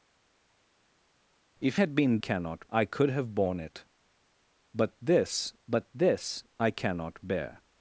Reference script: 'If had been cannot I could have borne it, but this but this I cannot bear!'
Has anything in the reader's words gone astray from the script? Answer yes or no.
no